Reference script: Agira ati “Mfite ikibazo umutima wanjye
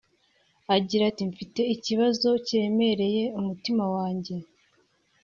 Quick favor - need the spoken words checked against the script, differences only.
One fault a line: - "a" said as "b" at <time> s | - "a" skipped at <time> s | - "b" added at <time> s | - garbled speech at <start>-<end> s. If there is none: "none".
- "kiremereye" added at 2.5 s